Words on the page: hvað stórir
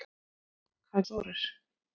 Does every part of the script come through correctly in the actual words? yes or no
yes